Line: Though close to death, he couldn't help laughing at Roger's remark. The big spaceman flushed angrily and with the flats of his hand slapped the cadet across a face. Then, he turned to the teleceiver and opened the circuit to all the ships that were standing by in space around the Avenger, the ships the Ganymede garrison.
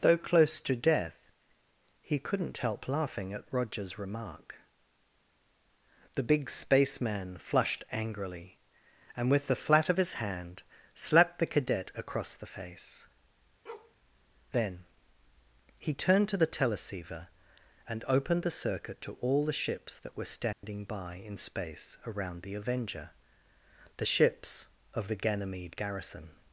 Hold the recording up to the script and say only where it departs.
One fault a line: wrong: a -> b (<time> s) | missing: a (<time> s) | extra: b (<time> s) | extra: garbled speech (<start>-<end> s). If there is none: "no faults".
wrong: flats -> flat (9.6 s)
wrong: a -> the (12.3 s)
extra: of (24.9 s)